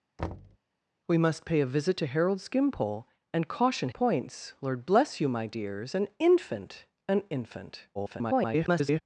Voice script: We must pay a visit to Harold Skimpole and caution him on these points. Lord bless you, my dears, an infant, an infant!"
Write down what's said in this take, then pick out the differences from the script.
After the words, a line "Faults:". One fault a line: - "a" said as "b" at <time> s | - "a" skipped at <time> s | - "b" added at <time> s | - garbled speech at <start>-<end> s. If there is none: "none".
We must pay a visit to Harold Skimpole and caution points. Lord bless you, my dears, an infant, an infant!" [garbled]
Faults:
- "him on these" skipped at 3.9 s
- garbled speech at 7.9-9.0 s